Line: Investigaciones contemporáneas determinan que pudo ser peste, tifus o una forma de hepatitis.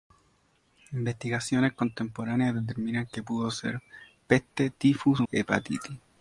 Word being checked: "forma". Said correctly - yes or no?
no